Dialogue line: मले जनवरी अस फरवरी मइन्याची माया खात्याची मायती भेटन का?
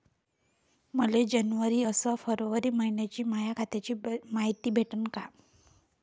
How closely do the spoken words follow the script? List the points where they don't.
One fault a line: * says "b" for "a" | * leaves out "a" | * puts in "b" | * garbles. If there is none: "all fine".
all fine